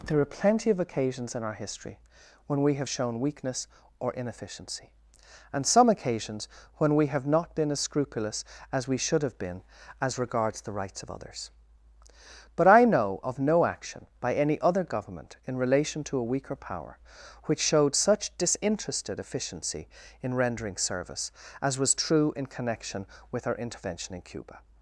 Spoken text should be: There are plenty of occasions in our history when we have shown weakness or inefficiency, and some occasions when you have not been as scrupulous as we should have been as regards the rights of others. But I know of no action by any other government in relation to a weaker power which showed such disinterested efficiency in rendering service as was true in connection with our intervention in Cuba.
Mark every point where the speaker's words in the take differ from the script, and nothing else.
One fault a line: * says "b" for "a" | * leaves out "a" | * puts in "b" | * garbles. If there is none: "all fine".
* says "we" for "you"